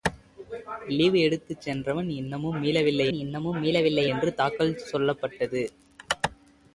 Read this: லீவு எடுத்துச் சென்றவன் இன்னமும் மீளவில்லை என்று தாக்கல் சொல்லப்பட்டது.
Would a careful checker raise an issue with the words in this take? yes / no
yes